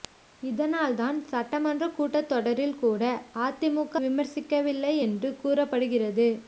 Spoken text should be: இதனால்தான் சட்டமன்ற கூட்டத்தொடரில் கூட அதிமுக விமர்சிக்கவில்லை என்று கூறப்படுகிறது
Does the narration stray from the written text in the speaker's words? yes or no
no